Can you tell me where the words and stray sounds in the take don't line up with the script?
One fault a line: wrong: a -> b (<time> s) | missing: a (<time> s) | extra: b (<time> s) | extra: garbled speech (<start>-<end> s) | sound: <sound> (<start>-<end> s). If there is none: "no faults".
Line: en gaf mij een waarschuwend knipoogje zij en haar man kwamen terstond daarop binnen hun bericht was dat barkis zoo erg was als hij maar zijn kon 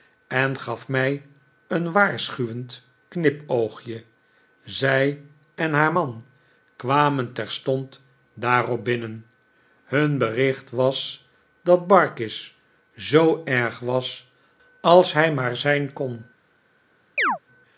sound: chirp (17.2-17.4 s)